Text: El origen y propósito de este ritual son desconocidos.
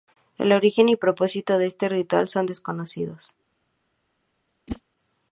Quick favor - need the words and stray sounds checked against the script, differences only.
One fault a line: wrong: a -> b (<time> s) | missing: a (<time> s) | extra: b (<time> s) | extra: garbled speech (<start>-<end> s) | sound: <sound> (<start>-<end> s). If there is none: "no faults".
sound: whoosh (4.7-4.8 s)